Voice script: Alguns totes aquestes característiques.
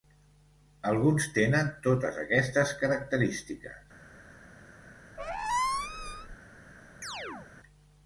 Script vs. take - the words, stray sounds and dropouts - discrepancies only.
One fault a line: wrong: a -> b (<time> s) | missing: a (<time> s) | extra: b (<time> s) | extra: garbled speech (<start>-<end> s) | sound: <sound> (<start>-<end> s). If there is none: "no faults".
extra: tenen (1.4 s)
sound: squeak (5.2-6.4 s)
sound: chirp (7.0-7.5 s)